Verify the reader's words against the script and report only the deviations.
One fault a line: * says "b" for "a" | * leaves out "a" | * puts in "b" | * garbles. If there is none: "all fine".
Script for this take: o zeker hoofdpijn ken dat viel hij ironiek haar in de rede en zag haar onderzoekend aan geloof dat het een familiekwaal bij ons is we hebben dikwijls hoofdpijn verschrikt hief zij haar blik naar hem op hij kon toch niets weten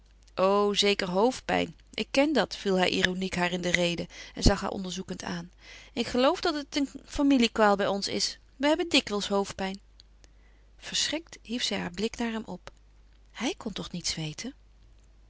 * puts in "ik"
* puts in "ik"